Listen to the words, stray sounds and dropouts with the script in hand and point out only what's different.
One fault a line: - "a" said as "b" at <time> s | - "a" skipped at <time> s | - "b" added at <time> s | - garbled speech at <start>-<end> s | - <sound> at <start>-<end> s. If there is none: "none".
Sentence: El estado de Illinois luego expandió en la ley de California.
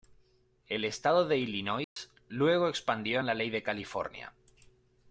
- dropout at 1.8-2.0 s